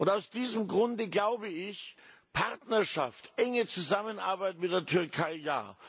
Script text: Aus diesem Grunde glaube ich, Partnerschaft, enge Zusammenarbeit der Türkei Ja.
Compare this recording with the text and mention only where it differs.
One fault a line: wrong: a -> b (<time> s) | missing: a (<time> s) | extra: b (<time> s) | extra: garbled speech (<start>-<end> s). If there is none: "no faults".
extra: mit (4.6 s)